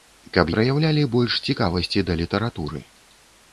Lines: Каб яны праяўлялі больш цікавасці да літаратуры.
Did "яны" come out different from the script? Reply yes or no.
yes